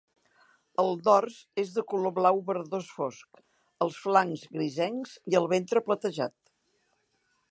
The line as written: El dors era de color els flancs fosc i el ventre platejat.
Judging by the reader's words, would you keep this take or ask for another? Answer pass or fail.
fail